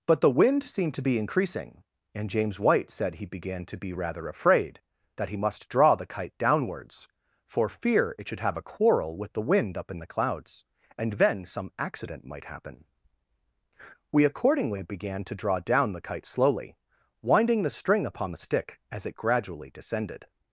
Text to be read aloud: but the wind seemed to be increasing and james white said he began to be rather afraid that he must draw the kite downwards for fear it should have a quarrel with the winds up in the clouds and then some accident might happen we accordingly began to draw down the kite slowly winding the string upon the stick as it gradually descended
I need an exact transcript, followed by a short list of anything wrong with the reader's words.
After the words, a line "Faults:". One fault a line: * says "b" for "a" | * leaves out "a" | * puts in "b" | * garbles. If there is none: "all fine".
but the wind seemed to be increasing and james white said he began to be rather afraid that he must draw the kite downwards for fear it should have a quarrel with the wind up in the clouds and then some accident might happen we accordingly began to draw down the kite slowly winding the string upon the stick as it gradually descended
Faults:
* says "wind" for "winds"